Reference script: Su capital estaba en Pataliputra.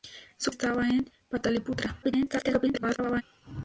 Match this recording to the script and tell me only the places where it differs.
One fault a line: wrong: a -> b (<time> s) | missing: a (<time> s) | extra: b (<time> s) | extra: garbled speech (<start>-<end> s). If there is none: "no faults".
missing: capital (0.5 s)
extra: garbled speech (2.0-3.2 s)